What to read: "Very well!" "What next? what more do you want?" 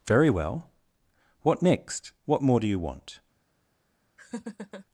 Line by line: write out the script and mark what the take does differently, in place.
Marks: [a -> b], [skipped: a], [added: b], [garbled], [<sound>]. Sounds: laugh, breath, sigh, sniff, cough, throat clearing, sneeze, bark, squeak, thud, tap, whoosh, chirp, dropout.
"Very well!" "What next? what more do you want?" [laugh]